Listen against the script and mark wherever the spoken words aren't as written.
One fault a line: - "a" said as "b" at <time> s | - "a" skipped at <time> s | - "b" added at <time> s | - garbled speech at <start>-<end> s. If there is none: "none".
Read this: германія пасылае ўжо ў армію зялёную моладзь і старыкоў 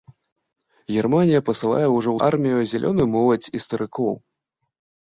none